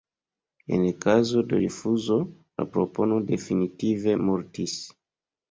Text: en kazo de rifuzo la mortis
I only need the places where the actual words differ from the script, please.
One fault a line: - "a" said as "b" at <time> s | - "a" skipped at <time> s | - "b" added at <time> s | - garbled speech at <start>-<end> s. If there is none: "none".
- "propono definitive" added at 2.7 s